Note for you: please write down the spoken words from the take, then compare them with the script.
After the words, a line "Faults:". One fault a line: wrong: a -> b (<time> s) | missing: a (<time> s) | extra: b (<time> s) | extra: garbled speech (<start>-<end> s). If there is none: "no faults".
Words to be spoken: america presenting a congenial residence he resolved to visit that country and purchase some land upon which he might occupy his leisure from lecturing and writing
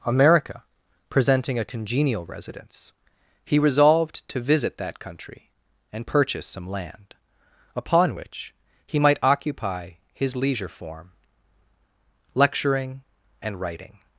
america presenting a congenial residence he resolved to visit that country and purchase some land upon which he might occupy his leisure form lecturing and writing
Faults:
wrong: from -> form (10.7 s)